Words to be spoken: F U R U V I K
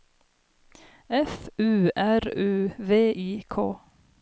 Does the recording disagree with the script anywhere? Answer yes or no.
no